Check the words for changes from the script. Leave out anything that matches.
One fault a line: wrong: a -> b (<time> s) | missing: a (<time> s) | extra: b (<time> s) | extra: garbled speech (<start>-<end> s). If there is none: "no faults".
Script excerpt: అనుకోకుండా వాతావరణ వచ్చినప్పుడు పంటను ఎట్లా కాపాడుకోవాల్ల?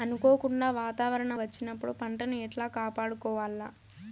no faults